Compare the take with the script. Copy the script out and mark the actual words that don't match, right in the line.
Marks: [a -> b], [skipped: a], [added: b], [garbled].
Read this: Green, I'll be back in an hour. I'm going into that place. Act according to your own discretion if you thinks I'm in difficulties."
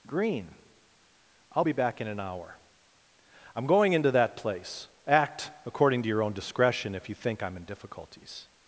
Green, I'll be back in an hour. I'm going into that place. Act according to your own discretion if you [thinks -> think] I'm in difficulties."